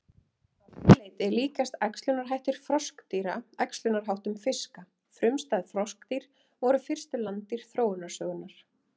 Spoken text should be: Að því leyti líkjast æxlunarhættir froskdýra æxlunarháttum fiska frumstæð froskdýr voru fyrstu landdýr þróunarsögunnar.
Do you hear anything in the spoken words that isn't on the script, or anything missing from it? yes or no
no